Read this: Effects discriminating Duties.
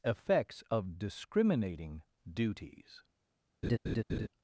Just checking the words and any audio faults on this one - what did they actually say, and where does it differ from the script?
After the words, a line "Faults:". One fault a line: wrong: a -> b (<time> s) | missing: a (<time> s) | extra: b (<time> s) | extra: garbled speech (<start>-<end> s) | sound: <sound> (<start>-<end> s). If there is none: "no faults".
Effects of discriminating Duties.
Faults:
extra: of (0.7 s)
sound: laugh (3.6-4.3 s)